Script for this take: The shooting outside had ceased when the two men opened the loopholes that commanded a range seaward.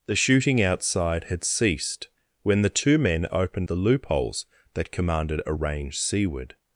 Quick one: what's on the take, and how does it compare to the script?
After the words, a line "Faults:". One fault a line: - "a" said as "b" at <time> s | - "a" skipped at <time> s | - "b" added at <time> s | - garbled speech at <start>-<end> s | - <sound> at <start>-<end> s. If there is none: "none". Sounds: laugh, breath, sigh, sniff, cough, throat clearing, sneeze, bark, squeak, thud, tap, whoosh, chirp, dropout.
The shooting outside had ceased when the two men opened the loopholes that commanded a range seaward.
Faults:
none